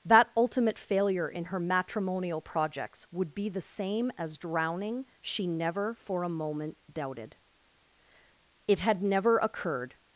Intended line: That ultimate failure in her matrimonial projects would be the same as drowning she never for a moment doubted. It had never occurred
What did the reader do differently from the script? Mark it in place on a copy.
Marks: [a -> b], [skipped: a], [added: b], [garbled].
That ultimate failure in her matrimonial projects would be the same as drowning she never for a moment doubted. It had never occurred